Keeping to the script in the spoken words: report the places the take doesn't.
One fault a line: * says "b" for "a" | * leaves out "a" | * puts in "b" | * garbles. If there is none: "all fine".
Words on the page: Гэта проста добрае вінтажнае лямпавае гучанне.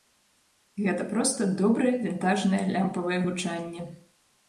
all fine